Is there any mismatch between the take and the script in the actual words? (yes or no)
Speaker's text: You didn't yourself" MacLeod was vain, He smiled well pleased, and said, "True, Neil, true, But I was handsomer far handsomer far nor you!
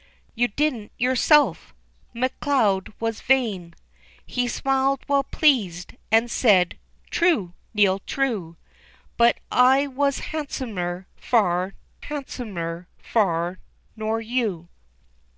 no